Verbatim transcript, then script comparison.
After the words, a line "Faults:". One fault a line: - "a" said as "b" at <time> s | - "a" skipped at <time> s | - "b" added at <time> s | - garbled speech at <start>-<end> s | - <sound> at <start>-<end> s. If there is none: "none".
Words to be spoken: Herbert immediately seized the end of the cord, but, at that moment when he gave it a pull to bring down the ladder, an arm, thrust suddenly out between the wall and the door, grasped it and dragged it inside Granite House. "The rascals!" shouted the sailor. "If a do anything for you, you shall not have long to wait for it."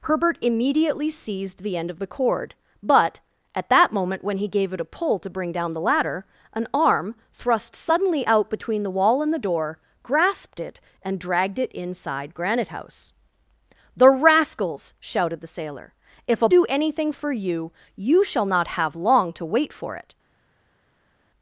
Herbert immediately seized the end of the cord, but, at that moment when he gave it a pull to bring down the ladder, an arm, thrust suddenly out between the wall and the door, grasped it and dragged it inside Granite House. "The rascals!" shouted the sailor. "If a do anything for you, you shall not have long to wait for it."
Faults:
none